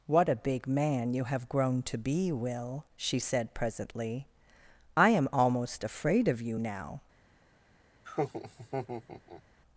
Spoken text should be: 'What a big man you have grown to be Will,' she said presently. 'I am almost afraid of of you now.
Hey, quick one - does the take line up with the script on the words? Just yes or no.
no